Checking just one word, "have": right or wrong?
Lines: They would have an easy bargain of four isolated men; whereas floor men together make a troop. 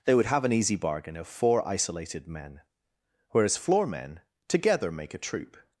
right